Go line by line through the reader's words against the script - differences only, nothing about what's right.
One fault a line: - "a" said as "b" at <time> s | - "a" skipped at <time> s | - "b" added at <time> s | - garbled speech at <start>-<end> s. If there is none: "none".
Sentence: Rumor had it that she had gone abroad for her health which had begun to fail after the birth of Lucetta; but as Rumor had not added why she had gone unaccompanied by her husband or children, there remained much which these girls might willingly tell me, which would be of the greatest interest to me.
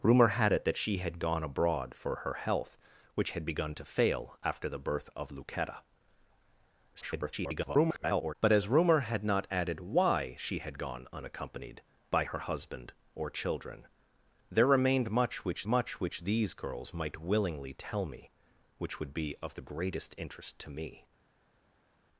- garbled speech at 6.9-8.3 s
- "much which" added at 15.7 s